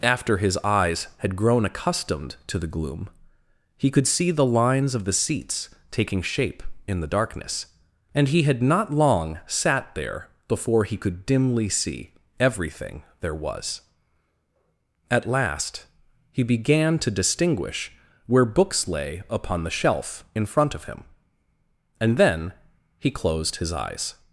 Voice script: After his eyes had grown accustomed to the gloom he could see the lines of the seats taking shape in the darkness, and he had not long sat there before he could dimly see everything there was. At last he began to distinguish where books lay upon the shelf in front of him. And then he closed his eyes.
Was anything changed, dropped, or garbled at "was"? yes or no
no